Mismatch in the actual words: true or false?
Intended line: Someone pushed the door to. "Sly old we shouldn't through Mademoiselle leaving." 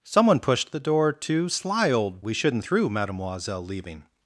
false